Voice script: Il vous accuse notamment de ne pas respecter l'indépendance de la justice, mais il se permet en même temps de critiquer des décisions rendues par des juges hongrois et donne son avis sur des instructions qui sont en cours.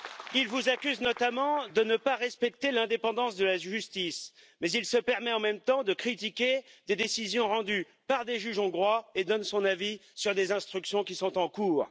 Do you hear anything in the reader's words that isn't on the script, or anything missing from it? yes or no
no